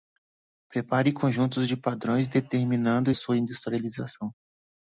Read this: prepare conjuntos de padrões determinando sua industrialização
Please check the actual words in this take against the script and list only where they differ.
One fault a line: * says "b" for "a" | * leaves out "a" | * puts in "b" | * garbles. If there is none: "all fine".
all fine